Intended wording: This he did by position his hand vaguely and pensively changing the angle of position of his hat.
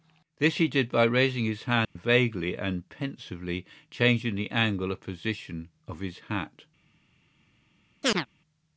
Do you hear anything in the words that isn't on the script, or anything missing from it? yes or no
yes